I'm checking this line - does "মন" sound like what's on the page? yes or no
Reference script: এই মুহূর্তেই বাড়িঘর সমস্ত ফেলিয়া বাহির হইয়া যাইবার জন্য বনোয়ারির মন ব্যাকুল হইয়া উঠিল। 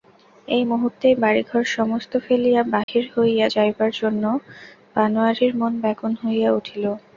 yes